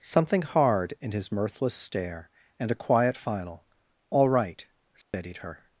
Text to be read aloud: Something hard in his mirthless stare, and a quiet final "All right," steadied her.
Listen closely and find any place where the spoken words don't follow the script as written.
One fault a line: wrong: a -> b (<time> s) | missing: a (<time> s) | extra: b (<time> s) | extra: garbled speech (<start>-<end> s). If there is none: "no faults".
no faults